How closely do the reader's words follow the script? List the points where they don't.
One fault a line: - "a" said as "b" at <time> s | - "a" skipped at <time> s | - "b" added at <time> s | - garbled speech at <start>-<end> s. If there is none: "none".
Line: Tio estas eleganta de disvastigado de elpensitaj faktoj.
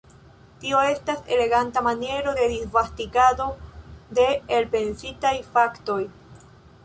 - "maniero" added at 1.9 s